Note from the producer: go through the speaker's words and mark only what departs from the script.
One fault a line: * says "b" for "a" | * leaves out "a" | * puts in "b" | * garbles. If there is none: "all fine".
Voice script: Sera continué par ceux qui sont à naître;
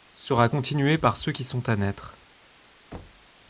all fine